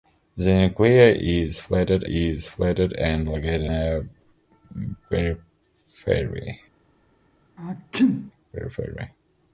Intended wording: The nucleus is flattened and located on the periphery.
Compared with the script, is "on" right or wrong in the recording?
wrong